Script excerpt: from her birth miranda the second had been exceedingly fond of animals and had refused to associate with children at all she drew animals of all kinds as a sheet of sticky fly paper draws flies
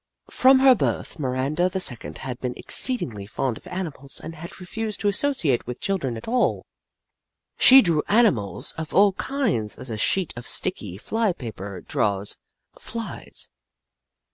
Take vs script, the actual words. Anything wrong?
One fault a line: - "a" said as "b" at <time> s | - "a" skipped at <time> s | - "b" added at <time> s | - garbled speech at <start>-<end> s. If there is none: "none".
none